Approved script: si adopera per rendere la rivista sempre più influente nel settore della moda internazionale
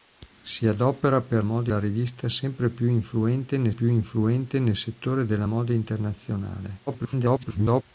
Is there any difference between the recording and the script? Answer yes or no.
yes